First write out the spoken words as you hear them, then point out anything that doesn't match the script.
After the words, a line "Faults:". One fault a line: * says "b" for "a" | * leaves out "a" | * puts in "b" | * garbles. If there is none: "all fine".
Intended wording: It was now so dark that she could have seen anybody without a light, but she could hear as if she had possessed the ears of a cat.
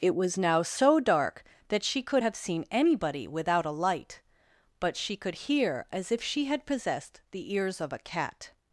It was now so dark that she could have seen anybody without a light, but she could hear as if she had possessed the ears of a cat.
Faults:
all fine